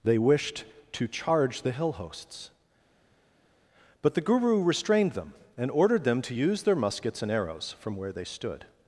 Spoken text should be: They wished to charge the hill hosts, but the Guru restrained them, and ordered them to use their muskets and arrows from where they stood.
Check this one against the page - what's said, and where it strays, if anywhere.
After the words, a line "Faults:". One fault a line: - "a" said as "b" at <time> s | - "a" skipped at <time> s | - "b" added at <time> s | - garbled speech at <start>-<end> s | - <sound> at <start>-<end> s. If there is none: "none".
They wished to charge the hill hosts, but the Guru restrained them, and ordered them to use their muskets and arrows from where they stood.
Faults:
none